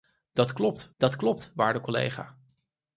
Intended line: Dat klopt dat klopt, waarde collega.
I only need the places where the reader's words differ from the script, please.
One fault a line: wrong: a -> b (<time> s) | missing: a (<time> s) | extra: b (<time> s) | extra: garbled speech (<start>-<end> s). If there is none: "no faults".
no faults